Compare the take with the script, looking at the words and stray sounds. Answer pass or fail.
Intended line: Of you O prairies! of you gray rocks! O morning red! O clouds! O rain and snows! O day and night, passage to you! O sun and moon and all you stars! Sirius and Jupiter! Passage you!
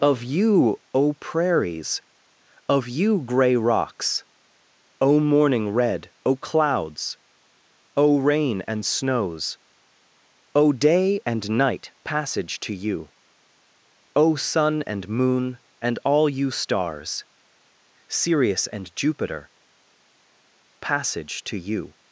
fail